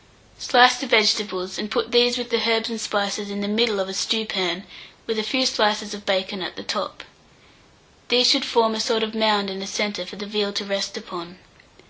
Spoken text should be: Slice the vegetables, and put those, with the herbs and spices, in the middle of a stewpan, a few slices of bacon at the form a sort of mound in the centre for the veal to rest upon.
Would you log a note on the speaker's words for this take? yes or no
yes